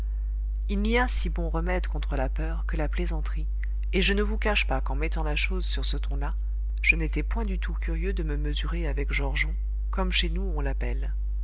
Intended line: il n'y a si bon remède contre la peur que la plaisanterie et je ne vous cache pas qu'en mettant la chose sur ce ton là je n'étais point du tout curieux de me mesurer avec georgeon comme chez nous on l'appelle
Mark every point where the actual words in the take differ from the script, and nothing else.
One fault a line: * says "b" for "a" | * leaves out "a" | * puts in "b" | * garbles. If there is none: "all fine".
all fine